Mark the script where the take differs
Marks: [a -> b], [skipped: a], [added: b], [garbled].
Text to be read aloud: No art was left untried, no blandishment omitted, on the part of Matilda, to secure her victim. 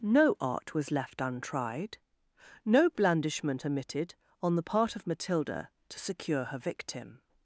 No art was left untried, no blandishment omitted, on the part of Matilda, to secure her victim.